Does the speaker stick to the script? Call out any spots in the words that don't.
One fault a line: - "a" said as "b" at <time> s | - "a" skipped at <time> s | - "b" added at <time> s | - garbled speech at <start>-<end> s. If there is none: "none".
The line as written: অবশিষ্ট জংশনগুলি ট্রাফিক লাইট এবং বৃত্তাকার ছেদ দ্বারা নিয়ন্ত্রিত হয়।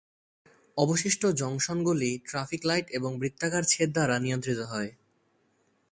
none